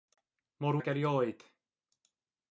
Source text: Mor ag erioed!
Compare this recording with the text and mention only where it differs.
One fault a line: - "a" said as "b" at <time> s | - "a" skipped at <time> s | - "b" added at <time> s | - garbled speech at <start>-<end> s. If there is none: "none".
none